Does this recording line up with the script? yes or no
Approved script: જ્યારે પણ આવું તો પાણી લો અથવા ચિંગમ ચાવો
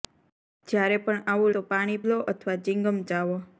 yes